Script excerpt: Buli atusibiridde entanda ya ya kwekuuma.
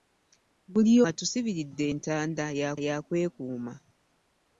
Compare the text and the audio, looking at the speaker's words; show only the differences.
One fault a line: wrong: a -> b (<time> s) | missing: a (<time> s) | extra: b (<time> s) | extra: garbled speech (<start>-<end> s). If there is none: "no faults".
no faults